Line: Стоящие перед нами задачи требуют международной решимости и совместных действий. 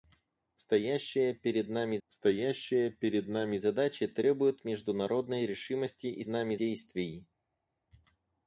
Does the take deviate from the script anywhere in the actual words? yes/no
yes